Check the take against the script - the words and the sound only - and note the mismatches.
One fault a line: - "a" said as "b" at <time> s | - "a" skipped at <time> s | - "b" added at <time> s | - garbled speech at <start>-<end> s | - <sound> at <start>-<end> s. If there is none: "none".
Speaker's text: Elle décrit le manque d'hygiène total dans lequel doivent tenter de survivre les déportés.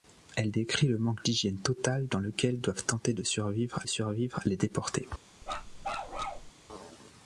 - "survivre" added at 3.8 s
- bark at 5.4-6.5 s